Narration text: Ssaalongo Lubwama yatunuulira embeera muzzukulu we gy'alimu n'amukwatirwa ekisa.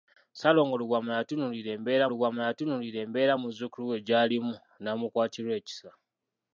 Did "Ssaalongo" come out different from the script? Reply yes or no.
no